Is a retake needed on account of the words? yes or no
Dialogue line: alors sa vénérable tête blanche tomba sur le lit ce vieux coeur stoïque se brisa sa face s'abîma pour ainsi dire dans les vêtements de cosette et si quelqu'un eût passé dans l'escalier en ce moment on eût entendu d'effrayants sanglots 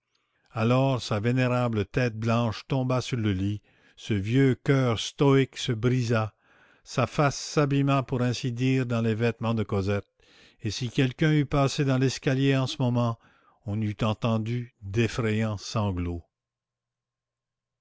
no